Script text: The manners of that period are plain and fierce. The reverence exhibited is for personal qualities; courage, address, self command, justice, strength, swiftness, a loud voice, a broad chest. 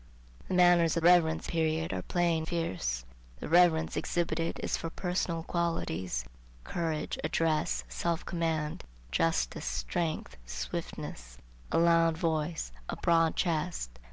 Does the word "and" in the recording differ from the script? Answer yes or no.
yes